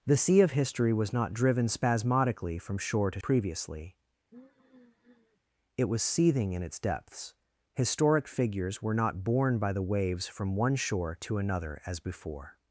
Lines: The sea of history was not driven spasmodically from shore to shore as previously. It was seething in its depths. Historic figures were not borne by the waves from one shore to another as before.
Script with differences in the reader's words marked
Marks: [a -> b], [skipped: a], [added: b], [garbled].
The sea of history was not driven spasmodically from shore to [skipped: shore as] previously. It was seething in its depths. Historic figures were not borne by the waves from one shore to another as before.